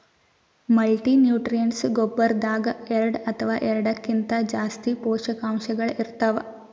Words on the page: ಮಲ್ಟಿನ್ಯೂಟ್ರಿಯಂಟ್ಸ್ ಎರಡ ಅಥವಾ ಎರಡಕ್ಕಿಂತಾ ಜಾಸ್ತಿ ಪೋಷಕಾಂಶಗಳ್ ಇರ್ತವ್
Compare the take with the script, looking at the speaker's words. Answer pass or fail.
fail